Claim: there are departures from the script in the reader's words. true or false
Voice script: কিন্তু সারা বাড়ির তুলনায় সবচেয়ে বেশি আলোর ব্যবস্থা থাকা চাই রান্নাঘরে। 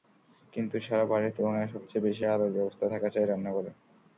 false